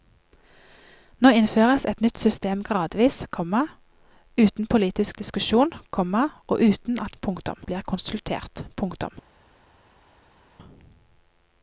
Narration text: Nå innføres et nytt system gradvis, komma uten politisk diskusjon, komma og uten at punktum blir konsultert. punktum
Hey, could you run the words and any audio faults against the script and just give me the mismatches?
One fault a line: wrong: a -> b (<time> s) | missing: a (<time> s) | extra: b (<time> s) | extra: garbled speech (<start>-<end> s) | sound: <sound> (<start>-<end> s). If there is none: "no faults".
no faults